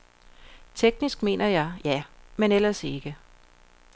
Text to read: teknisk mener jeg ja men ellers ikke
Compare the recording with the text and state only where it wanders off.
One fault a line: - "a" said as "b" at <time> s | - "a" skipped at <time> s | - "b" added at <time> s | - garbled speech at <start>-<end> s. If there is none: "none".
none